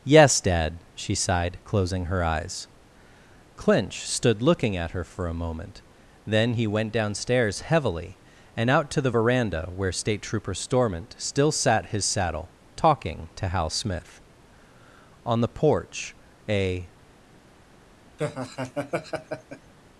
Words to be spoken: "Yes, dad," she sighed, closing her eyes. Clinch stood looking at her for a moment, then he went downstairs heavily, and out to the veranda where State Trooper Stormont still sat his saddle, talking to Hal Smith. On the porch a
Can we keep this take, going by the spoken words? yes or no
yes